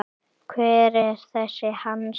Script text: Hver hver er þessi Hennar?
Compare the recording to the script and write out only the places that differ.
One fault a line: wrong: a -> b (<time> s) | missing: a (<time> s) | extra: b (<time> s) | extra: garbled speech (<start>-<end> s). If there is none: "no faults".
missing: hver (0.9 s)
wrong: Hennar -> Hans (1.8 s)